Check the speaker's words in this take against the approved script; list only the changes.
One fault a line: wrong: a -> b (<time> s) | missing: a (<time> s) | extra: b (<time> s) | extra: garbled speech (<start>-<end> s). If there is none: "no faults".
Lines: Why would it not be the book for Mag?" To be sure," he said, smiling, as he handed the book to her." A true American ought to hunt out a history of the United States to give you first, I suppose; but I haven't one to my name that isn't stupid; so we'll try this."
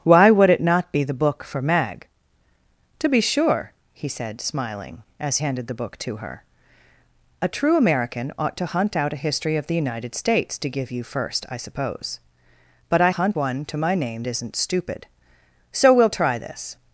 missing: he (5.4 s)
wrong: haven't -> hunt (13.1 s)
missing: that (14.2 s)